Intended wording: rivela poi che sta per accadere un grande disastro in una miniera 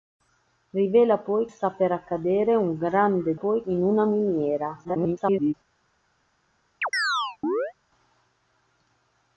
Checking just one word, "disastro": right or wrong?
wrong